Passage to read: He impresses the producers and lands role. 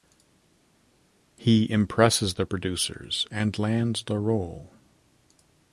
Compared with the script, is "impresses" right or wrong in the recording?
right